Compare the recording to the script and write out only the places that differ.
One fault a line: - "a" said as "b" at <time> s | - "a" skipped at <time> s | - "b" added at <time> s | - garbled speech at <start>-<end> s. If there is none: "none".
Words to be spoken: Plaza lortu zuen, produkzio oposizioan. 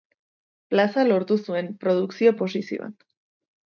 none